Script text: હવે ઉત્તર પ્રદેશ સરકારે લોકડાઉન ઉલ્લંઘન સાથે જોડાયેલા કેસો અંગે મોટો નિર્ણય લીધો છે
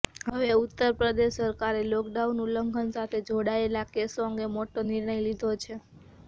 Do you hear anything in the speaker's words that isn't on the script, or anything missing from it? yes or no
no